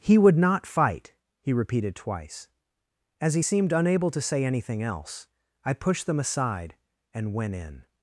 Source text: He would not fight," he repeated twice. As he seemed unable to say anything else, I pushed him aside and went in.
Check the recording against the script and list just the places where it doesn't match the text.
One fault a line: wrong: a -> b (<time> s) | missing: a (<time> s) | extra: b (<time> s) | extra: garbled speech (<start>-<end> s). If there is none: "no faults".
wrong: him -> them (6.1 s)